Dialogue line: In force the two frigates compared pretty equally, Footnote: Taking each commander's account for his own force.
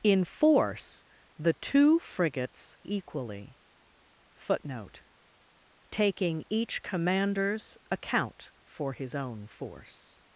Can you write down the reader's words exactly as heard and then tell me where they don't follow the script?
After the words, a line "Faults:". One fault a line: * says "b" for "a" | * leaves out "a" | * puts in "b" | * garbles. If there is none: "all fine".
In force the two frigates equally, Footnote: Taking each commander's account for his own force.
Faults:
* leaves out "compared pretty"